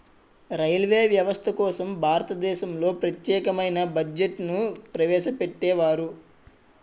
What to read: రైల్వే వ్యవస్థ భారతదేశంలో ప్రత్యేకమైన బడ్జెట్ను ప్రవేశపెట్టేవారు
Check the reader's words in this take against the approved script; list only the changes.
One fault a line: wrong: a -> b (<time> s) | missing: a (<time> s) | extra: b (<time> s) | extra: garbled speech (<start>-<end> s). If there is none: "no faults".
extra: కోసం (1.6 s)